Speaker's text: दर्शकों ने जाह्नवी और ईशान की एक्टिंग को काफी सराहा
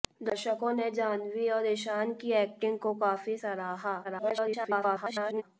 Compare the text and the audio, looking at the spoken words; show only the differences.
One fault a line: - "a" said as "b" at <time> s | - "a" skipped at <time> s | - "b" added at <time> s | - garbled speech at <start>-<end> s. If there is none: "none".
- garbled speech at 4.0-5.4 s